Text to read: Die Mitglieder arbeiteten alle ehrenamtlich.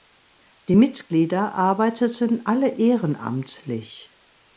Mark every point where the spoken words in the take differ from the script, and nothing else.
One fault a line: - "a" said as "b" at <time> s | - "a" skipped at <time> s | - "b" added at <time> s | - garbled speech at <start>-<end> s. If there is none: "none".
none